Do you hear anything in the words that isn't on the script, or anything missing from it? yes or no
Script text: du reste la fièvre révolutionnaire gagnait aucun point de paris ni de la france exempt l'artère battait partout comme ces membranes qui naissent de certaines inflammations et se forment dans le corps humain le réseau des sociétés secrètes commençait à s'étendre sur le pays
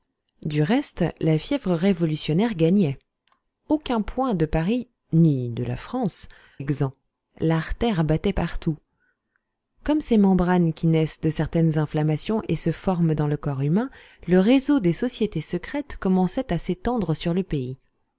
no